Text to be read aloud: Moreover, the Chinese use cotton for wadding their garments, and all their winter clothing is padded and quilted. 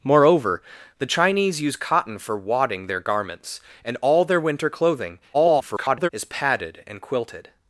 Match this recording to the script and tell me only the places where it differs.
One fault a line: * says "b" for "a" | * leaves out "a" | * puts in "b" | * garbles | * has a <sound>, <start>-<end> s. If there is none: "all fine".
* garbles